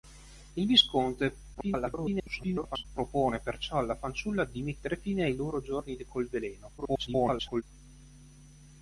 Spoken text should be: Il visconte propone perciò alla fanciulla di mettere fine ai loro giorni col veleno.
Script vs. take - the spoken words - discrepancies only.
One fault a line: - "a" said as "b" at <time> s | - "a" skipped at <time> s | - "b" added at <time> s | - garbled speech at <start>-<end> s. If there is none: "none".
- garbled speech at 1.5-2.8 s
- garbled speech at 6.8-7.6 s